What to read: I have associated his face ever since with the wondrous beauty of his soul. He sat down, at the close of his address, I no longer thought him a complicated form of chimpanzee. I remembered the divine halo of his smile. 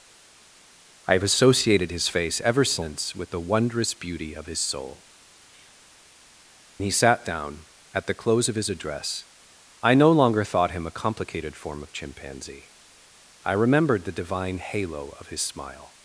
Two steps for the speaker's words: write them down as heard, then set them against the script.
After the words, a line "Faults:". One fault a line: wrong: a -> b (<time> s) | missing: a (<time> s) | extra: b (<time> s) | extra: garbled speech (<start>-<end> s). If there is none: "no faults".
I have associated his face ever since with the wondrous beauty of his soul. He sat down, at the close of his address, I no longer thought him a complicated form of chimpanzee. I remembered the divine halo of his smile.
Faults:
no faults